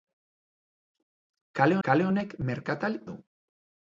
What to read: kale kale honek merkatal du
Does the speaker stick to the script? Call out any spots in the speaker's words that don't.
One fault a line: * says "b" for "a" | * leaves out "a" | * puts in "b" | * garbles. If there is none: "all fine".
all fine